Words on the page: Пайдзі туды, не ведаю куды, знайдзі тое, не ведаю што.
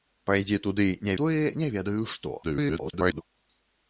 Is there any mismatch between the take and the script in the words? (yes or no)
yes